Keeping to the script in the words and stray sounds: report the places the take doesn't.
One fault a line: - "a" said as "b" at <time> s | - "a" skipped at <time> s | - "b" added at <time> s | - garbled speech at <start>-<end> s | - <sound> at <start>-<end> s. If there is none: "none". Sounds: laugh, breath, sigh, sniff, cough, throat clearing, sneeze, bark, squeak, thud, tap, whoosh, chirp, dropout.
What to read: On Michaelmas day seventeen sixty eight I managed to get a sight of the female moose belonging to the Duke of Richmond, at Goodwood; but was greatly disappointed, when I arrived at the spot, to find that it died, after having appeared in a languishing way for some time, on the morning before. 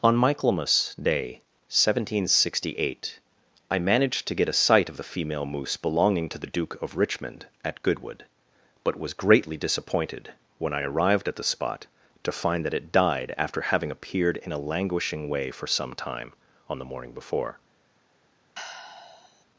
- sigh at 18.5-19.4 s